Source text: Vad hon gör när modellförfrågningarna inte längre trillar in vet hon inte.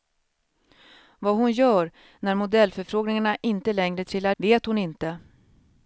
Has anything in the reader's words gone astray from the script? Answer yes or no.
yes